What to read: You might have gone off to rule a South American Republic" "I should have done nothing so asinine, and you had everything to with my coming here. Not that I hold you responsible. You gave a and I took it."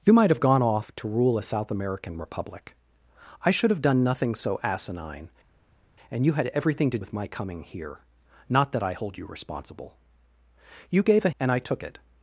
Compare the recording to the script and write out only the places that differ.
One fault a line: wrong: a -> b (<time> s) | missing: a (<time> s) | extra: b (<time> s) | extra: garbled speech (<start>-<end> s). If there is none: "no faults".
no faults